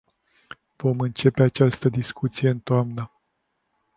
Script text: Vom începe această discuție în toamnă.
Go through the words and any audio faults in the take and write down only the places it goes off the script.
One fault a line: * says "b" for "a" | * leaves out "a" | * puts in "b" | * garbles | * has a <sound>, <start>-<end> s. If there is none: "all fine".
all fine